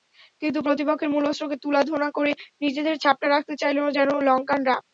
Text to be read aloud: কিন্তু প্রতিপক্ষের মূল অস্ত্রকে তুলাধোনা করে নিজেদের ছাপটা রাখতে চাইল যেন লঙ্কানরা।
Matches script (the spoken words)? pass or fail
pass